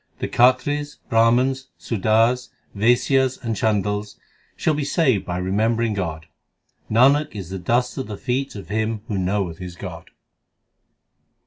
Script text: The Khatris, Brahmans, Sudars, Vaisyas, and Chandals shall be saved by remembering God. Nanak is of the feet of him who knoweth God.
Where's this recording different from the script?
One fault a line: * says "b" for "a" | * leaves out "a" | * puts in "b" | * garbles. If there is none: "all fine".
* puts in "the dust"
* puts in "his"